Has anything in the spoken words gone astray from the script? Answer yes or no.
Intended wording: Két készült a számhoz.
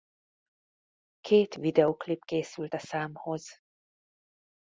yes